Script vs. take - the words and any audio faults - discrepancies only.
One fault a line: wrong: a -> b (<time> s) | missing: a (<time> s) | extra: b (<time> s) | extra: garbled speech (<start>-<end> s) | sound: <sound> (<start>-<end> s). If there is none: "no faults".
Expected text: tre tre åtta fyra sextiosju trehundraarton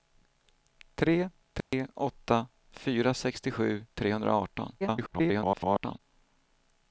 sound: dropout (1.6-1.7 s)
extra: garbled speech (4.8-6.0 s)